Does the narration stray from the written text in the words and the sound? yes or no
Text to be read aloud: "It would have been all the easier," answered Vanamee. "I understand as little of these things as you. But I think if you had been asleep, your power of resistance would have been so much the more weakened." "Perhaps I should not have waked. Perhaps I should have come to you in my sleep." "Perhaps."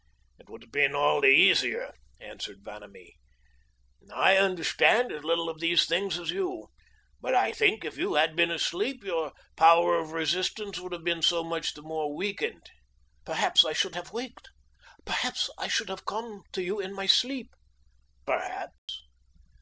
yes